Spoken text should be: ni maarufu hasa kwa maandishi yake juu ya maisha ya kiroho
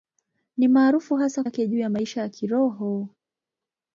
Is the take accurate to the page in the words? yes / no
no